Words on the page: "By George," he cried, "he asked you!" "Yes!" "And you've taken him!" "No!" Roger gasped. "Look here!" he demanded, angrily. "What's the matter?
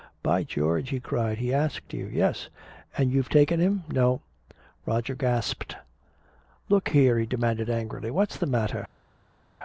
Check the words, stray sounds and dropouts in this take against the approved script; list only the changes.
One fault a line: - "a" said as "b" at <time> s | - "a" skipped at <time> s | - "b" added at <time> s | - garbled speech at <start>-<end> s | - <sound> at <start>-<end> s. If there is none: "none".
none